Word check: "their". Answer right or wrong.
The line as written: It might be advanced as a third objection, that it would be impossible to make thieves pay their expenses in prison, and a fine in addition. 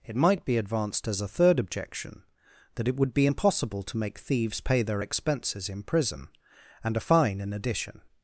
right